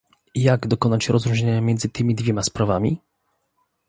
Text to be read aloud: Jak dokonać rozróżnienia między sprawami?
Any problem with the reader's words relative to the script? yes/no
yes